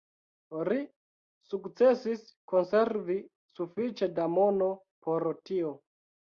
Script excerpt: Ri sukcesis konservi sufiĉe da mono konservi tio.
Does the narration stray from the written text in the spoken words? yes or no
yes